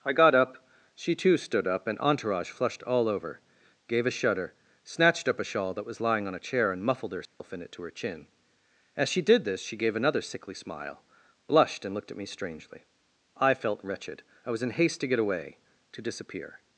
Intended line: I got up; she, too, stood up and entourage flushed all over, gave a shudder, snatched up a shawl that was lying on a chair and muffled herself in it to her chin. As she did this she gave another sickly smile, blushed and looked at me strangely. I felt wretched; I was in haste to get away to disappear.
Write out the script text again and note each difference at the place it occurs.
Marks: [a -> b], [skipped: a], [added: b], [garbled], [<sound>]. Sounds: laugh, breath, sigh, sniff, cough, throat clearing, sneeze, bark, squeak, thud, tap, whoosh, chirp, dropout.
I got up; she, too, stood up and entourage flushed all over, gave a shudder, snatched up a shawl that was lying on a chair and muffled herself [dropout] in it to her chin. As she did this she gave another sickly smile, blushed and looked at me strangely. I felt wretched; I was in haste to get away to disappear.